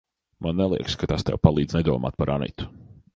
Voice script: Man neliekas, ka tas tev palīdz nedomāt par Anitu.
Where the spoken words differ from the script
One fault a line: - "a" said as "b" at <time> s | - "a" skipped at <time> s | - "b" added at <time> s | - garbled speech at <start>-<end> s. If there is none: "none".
none